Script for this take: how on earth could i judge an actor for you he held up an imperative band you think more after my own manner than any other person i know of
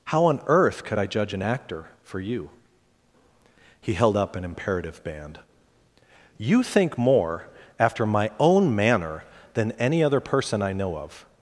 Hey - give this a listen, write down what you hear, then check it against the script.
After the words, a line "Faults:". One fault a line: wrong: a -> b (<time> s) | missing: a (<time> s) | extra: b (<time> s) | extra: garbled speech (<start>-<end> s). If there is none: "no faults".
how on earth could i judge an actor for you he held up an imperative band you think more after my own manner than any other person i know of
Faults:
no faults